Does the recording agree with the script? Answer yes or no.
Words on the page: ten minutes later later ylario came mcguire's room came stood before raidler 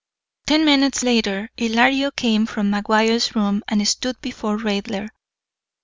no